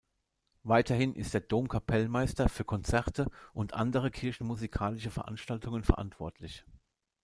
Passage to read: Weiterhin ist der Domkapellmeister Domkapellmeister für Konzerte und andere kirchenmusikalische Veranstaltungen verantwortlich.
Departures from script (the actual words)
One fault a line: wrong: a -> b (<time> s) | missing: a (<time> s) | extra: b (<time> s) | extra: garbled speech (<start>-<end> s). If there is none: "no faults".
missing: Domkapellmeister (2.5 s)